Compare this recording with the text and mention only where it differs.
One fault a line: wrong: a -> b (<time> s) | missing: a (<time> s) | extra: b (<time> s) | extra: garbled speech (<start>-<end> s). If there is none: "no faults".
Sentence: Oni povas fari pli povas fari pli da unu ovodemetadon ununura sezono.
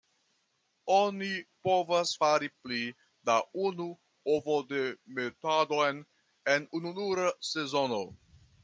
missing: povas fari pli (2.8 s)
extra: en (6.6 s)